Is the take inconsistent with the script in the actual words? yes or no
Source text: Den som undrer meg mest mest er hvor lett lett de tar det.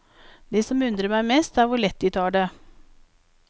yes